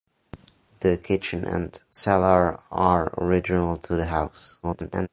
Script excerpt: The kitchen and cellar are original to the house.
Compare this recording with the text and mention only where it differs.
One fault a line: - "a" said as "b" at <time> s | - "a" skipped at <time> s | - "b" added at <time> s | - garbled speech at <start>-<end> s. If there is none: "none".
- garbled speech at 4.6-5.1 s